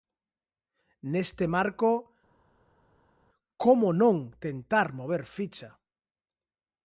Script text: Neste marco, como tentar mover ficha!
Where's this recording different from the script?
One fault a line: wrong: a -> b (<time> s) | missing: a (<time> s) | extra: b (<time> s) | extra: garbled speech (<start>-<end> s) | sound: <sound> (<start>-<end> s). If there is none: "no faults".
extra: non (4.0 s)